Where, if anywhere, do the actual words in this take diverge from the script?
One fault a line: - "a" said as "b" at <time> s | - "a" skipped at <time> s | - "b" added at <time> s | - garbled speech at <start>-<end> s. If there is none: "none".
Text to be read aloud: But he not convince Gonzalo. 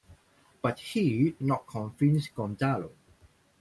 none